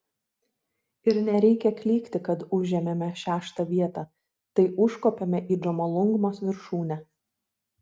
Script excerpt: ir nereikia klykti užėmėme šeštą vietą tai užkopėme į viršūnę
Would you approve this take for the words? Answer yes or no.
no